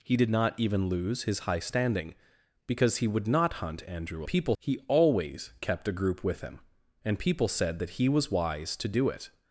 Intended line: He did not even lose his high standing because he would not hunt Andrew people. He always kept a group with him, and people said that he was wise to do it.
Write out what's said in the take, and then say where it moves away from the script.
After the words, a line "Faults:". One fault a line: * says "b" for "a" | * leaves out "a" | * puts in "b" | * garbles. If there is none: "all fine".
He did not even lose his high standing because he would not hunt Andrew people. He always kept a group with him, and people said that he was wise to do it.
Faults:
all fine